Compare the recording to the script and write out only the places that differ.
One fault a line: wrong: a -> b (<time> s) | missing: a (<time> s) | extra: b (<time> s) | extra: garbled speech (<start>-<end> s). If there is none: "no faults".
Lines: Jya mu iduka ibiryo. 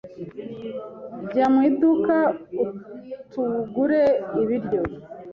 extra: utugure (3.2 s)